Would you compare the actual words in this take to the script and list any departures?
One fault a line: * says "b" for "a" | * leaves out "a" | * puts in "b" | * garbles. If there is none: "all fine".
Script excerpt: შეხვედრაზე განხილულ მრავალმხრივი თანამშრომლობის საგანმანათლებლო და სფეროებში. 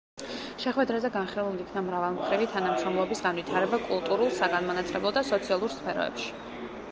* puts in "იქნა"
* puts in "განვითარება კულტურულ"
* puts in "სოციალურ"